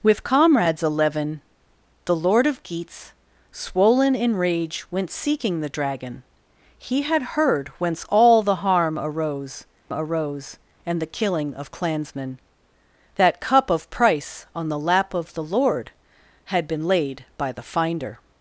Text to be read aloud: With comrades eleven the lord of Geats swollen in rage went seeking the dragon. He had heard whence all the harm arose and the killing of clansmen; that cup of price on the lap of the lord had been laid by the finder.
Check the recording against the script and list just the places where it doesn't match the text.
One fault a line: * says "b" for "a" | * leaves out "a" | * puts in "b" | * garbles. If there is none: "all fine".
* puts in "arose"